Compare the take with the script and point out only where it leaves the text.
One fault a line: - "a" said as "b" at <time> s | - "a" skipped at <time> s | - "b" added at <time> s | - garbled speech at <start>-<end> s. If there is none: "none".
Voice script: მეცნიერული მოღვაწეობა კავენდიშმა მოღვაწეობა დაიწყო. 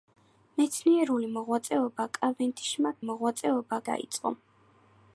none